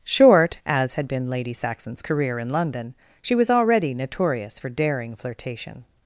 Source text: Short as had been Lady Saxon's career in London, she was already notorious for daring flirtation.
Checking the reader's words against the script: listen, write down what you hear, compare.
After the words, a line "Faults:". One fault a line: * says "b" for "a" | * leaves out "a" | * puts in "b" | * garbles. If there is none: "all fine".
Short as had been Lady Saxon's career in London, she was already notorious for daring flirtation.
Faults:
all fine